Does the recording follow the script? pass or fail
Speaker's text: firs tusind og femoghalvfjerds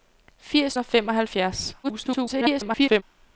fail